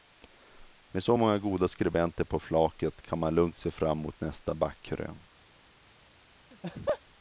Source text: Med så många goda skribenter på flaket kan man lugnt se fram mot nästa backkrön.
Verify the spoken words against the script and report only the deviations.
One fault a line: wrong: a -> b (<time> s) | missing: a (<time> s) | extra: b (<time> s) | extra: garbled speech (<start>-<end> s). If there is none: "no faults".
no faults